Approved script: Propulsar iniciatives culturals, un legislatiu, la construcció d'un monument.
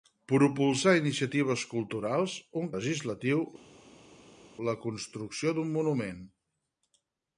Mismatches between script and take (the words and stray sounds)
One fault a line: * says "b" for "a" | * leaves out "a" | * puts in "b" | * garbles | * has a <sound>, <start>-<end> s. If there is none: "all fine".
all fine